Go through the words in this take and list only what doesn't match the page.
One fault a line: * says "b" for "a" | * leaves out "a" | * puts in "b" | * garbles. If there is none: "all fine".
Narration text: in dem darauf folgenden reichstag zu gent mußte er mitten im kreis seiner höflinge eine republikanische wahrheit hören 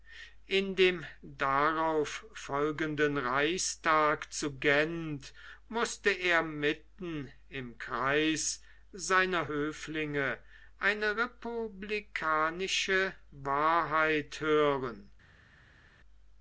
all fine